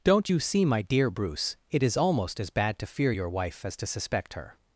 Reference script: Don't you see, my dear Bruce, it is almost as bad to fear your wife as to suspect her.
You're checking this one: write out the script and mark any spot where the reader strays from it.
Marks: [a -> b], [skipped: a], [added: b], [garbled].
Don't you see, my dear Bruce, it is almost as bad to fear your wife as to suspect her.